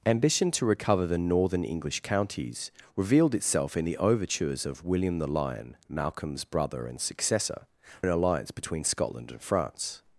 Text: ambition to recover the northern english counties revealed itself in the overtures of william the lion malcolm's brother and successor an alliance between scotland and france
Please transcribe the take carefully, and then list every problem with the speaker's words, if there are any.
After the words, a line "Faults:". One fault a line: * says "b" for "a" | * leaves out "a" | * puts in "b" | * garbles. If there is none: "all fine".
ambition to recover the northern english counties revealed itself in the overtures of william the lion malcolm's brother and successor an alliance between scotland and france
Faults:
all fine